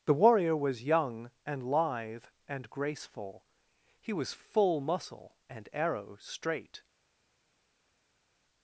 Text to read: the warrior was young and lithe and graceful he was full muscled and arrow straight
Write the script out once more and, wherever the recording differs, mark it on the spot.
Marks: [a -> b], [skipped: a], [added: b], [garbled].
the warrior was young and lithe and graceful he was full [muscled -> muscle] and arrow straight